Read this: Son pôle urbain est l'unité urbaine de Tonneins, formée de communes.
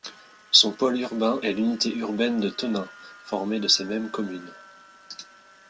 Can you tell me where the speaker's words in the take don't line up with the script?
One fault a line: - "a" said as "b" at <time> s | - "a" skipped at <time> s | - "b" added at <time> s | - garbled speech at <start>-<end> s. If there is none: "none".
- "ces mêmes" added at 3.7 s